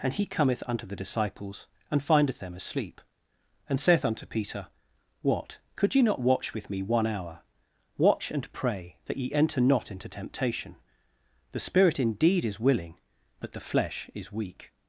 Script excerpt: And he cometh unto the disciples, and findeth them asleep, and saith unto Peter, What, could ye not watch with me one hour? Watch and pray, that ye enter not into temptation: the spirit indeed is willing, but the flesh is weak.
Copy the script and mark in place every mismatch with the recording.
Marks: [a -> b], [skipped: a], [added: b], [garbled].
And he cometh unto the disciples, and findeth them asleep, and saith unto Peter, What, could ye not watch with me one hour? Watch and pray, that ye enter not into temptation: the spirit indeed is willing, but the flesh is weak.